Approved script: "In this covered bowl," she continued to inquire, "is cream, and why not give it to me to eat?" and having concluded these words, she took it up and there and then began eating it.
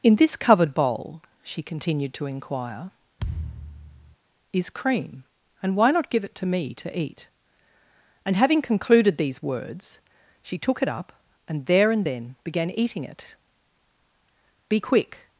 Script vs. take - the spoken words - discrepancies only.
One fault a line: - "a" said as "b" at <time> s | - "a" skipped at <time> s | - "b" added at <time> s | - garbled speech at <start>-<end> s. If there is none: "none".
- "Be quick" added at 14.7 s